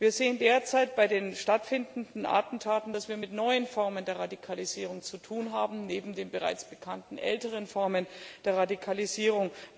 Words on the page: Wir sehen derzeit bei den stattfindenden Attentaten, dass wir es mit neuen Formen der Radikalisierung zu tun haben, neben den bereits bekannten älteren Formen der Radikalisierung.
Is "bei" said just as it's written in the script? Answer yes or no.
yes